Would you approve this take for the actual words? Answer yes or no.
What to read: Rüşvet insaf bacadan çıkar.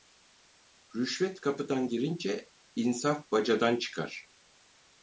no